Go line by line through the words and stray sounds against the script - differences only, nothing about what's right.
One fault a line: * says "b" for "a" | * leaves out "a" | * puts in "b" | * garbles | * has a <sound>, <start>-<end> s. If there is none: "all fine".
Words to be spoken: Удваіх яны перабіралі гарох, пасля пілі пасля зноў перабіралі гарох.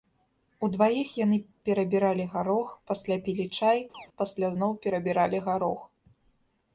* puts in "чай"
* has a chirp, 3.9-4.1 s